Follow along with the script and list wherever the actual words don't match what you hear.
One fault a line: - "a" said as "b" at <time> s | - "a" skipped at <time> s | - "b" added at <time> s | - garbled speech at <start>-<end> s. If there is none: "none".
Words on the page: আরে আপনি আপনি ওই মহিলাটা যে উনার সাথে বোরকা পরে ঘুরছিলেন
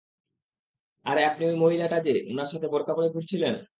- "আপনি" skipped at 1.4 s